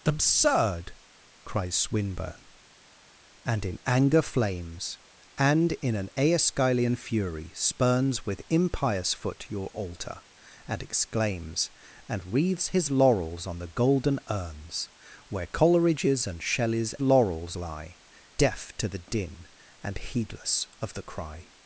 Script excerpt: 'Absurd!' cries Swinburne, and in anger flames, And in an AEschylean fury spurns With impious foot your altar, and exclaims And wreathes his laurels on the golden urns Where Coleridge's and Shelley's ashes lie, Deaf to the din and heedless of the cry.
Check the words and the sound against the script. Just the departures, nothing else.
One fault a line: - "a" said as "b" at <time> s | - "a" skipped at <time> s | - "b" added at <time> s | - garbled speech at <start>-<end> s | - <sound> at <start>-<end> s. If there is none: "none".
- "ashes" said as "laurels" at 17.0 s